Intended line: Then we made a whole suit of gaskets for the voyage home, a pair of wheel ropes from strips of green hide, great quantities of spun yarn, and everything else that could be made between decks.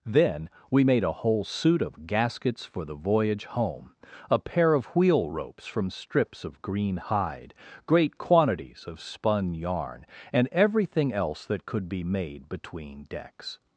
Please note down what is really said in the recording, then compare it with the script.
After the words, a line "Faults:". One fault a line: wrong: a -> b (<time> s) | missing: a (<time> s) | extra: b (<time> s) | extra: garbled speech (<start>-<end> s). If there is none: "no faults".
Then we made a whole suit of gaskets for the voyage home, a pair of wheel ropes from strips of green hide, great quantities of spun yarn, and everything else that could be made between decks.
Faults:
no faults